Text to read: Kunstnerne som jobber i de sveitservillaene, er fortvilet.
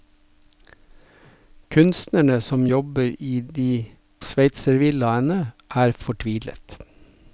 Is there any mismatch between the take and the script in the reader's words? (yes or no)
no